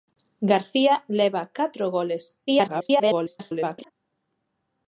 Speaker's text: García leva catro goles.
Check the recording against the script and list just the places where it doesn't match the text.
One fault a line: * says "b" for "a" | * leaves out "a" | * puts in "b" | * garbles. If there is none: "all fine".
* garbles